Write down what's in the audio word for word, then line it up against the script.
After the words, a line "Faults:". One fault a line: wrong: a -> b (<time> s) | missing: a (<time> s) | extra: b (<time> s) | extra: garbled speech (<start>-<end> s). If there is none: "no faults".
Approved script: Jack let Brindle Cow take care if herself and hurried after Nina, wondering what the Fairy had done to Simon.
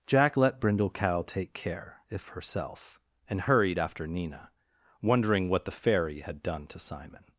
Jack let Brindle Cow take care if herself and hurried after Nina, wondering what the Fairy had done to Simon.
Faults:
no faults